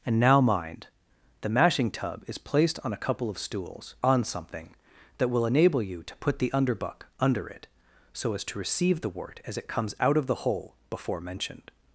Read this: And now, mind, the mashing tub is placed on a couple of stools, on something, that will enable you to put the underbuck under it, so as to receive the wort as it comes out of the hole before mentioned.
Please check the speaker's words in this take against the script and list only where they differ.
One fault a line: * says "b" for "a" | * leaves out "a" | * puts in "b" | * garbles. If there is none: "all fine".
all fine